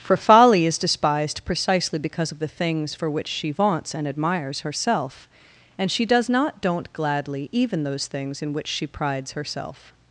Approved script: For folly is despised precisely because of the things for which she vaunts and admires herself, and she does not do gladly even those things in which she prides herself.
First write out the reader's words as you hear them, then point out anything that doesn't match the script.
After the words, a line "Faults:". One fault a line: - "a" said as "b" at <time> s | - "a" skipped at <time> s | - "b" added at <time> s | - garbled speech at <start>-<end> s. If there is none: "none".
For folly is despised precisely because of the things for which she vaunts and admires herself, and she does not don't gladly even those things in which she prides herself.
Faults:
- "do" said as "don't" at 6.6 s